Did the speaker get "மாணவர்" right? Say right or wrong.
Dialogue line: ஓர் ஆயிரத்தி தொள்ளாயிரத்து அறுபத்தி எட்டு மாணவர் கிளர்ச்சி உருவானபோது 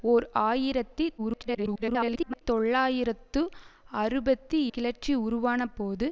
wrong